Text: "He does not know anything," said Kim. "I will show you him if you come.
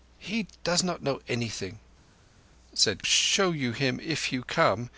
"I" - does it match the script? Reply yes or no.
no